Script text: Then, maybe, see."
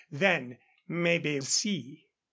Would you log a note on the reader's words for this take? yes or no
no